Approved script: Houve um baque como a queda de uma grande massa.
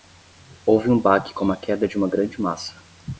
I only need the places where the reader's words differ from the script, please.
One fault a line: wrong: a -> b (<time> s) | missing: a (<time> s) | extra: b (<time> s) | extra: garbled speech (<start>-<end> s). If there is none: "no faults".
no faults